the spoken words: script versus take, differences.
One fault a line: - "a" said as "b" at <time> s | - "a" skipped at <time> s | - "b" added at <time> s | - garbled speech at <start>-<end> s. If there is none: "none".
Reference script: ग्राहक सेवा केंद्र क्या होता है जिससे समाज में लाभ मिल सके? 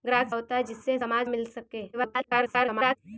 - "सेवा केंद्र क्या" skipped at 0.3 s
- "में लाभ" skipped at 1.3 s
- garbled speech at 1.9-3.0 s